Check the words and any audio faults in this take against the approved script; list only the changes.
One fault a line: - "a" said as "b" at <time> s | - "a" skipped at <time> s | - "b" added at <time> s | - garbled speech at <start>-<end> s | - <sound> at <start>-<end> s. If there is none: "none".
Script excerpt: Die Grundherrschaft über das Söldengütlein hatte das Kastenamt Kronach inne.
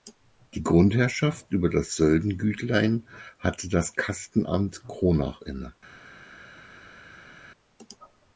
none